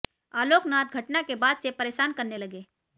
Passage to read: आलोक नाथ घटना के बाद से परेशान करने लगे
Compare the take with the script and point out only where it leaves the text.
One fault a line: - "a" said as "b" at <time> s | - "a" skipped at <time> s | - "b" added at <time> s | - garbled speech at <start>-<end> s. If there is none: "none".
none